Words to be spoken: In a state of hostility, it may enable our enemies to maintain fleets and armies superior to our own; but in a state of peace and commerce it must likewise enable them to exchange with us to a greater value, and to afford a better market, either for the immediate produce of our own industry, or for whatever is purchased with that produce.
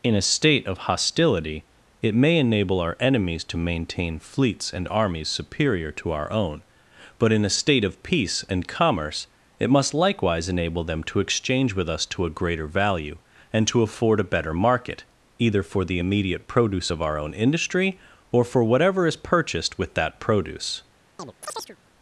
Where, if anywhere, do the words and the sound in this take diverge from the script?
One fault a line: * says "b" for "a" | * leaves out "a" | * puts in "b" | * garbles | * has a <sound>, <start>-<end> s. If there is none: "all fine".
* has a chirp, 21.2-21.8 s